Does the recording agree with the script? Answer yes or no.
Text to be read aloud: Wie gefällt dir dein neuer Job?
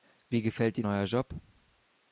no